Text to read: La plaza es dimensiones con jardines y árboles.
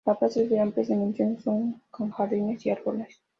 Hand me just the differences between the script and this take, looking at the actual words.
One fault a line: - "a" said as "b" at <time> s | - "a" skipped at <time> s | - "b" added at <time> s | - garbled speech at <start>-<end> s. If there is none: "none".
- "de amplias" added at 0.5 s